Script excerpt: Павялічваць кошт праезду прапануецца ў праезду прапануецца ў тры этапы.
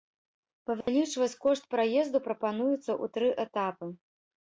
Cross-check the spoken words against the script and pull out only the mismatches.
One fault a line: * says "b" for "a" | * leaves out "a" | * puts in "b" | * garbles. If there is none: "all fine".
* leaves out "праезду прапануецца ў"